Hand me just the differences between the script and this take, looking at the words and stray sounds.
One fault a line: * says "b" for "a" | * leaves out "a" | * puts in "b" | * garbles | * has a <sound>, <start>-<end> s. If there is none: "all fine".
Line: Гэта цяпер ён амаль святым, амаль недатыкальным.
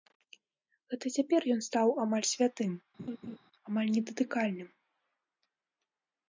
* puts in "стаў"
* has a laugh, 3.0-3.4 s